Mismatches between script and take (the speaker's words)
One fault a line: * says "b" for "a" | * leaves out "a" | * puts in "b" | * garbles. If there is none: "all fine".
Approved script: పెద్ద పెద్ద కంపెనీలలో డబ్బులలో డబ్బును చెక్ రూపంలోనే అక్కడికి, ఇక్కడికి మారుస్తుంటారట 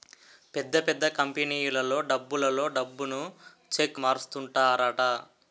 * leaves out "రూపంలోనే అక్కడికి ఇక్కడికి"